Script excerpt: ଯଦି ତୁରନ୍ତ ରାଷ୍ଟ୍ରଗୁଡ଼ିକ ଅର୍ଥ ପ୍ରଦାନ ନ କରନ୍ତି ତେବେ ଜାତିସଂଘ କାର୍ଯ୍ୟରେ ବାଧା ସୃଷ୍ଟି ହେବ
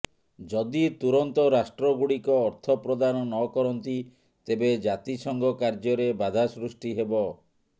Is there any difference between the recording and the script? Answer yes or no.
no